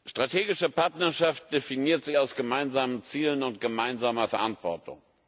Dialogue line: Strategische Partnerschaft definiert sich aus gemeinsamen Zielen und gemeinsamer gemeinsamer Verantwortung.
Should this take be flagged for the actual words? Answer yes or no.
yes